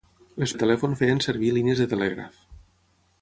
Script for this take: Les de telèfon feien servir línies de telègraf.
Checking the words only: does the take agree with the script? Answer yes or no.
yes